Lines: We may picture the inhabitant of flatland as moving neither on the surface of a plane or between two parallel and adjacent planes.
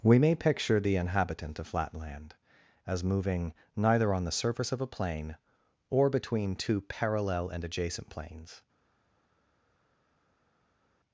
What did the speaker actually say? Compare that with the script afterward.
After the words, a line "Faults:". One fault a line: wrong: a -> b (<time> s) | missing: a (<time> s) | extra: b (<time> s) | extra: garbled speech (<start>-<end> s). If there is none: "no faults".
We may picture the inhabitant of flatland as moving neither on the surface of a plane or between two parallel and adjacent planes.
Faults:
no faults